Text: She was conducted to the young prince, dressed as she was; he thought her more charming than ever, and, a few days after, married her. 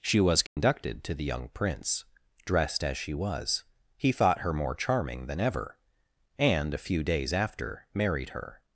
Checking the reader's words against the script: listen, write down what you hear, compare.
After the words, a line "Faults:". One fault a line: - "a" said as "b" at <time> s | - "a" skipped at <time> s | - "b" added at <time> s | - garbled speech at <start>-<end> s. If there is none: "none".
She was conducted to the young prince, dressed as she was; he thought her more charming than ever, and, a few days after, married her.
Faults:
none